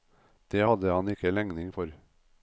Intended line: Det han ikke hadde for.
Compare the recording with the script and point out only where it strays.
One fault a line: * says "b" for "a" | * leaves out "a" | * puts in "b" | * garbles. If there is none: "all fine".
* puts in "hadde"
* says "legning" for "hadde"